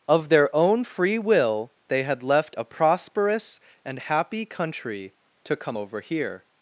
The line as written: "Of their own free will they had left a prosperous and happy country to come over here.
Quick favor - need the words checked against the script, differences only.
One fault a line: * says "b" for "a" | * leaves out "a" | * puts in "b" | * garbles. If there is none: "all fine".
all fine